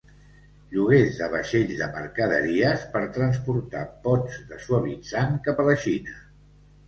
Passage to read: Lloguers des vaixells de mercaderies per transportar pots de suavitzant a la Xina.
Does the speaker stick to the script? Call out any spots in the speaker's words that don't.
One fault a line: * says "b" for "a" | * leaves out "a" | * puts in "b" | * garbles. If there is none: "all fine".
* says "de" for "des"
* puts in "cap"